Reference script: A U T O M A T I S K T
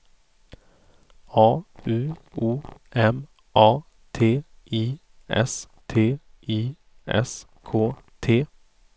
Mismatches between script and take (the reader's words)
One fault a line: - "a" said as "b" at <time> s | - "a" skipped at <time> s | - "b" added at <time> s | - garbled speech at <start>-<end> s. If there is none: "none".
- "T" skipped at 2.1 s
- "T I S" added at 5.9 s